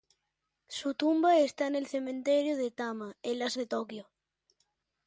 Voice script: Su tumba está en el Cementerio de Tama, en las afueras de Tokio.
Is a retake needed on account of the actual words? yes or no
yes